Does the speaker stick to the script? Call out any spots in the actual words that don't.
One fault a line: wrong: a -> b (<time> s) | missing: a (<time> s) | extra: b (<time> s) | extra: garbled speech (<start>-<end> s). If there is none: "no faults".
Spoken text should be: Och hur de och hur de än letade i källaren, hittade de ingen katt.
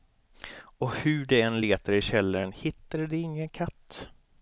missing: och hur de (1.4 s)